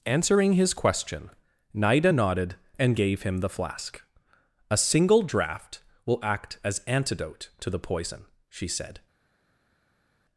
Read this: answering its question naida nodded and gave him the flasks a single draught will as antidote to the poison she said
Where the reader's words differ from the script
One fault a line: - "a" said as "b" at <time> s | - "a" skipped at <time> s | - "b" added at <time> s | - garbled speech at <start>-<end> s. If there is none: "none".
- "its" said as "his" at 0.5 s
- "flasks" said as "flask" at 3.5 s
- "act" added at 6.2 s